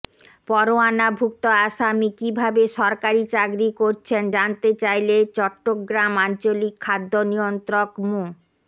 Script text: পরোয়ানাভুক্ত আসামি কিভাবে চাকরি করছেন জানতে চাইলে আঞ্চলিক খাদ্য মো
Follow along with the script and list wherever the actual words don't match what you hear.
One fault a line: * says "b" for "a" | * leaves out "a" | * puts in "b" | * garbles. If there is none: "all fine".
* puts in "সরকারি"
* puts in "চট্টগ্রাম"
* puts in "নিয়ন্ত্রক"